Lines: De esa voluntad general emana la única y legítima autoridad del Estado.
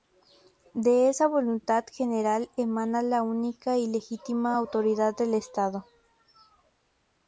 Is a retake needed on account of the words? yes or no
no